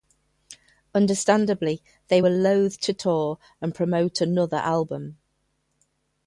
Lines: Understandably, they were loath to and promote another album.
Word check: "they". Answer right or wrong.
right